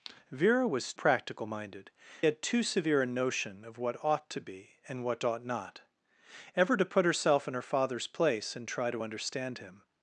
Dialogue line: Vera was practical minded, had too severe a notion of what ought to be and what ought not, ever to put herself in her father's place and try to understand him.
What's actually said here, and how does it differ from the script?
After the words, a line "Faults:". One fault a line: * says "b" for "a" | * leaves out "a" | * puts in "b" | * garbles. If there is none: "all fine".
Vera was practical minded, had too severe a notion of what ought to be and what ought not, ever to put herself in her father's place and try to understand him.
Faults:
all fine